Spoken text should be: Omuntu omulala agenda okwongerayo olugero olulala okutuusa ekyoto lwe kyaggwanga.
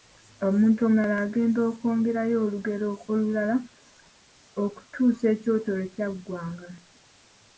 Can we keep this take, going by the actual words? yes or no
yes